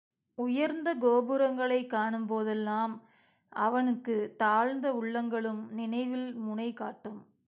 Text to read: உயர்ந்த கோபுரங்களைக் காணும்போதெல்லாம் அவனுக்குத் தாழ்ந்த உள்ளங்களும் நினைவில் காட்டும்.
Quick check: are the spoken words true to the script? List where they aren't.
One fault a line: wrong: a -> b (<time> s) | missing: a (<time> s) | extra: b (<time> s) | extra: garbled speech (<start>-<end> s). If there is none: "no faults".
extra: முனை (6.3 s)